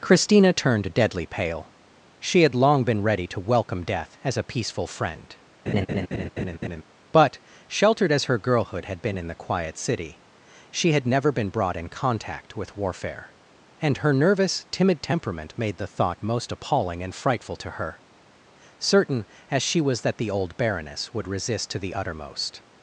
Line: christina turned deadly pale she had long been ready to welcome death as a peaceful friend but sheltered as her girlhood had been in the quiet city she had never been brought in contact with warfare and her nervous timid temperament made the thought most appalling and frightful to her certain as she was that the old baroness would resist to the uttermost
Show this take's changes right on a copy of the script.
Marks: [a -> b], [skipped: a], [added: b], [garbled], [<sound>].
christina turned deadly pale she had long been ready to welcome death as a peaceful friend [laugh] but sheltered as her girlhood had been in the quiet city she had never been brought in contact with warfare and her nervous timid temperament made the thought most appalling and frightful to her certain as she was that the old baroness would resist to the uttermost